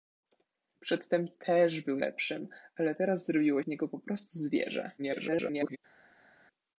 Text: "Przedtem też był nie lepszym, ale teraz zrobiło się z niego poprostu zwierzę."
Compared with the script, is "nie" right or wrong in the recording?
wrong